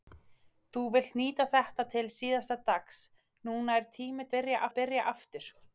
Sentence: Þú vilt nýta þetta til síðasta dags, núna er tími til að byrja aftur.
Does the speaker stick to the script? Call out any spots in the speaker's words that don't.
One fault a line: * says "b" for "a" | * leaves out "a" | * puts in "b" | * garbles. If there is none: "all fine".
* says "byrja" for "til"